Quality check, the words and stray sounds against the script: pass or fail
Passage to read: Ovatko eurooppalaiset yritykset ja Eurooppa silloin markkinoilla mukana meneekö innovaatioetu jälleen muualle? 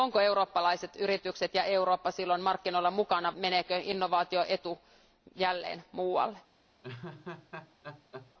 fail